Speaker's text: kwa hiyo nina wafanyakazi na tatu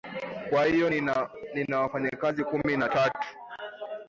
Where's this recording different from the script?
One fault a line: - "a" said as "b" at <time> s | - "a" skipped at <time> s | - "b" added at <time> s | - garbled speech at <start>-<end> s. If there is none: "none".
- "kumi" added at 2.4 s